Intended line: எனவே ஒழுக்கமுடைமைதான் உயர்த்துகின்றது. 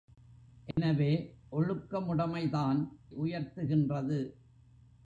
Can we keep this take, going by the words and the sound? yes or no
no